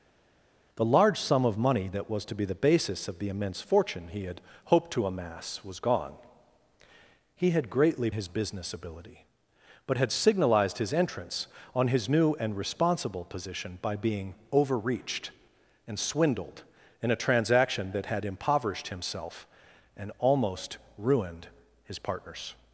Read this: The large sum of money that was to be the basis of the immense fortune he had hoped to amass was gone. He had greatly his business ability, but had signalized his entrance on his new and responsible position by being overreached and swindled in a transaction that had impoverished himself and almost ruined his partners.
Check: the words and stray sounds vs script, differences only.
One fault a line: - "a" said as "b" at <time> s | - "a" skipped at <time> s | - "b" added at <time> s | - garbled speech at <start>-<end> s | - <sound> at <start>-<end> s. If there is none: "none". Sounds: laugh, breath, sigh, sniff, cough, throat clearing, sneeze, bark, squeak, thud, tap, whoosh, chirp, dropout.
none